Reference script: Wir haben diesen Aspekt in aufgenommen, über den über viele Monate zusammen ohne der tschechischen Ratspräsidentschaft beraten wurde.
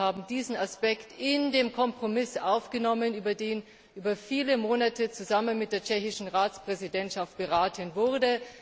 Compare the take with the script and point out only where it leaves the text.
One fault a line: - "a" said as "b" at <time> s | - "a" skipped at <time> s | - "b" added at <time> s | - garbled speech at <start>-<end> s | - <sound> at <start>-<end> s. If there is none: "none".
- "den Kompromiss" added at 1.5 s
- "ohne" said as "mit" at 5.6 s